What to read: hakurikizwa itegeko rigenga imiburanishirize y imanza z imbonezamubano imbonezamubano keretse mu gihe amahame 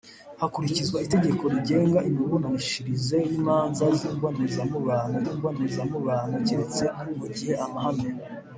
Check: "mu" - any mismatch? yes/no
no